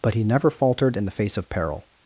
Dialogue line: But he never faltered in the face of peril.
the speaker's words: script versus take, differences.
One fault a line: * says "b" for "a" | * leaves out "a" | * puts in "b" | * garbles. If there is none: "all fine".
all fine